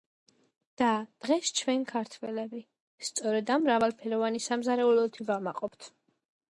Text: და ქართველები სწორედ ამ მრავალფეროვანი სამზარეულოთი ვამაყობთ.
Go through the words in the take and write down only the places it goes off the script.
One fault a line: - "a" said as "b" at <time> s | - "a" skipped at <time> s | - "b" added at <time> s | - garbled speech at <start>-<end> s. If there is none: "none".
- "დღეს ჩვენ" added at 1.2 s